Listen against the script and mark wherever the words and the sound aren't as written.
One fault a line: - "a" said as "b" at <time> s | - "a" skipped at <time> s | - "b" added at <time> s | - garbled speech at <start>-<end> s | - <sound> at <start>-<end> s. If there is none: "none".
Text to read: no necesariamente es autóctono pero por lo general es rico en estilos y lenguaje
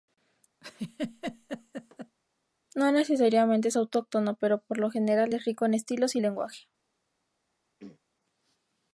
- laugh at 0.6-2.2 s
- throat clearing at 7.8-8.0 s